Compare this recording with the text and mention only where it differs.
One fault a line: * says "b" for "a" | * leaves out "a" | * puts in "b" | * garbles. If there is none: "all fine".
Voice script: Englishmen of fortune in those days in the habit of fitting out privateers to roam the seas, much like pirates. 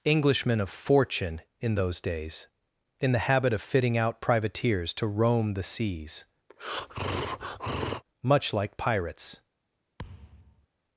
all fine